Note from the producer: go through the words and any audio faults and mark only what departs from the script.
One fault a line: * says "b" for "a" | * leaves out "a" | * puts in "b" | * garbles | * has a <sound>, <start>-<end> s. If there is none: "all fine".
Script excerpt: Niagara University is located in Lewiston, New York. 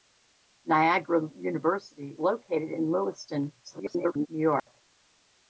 * leaves out "is"
* garbles
* has a dropout, 4.6-4.7 s